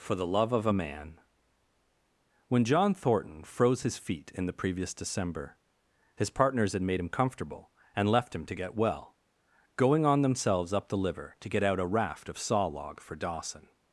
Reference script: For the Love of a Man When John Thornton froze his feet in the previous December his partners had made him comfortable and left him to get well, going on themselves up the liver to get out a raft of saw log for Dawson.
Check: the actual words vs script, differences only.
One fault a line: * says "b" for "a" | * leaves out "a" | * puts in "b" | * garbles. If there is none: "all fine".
all fine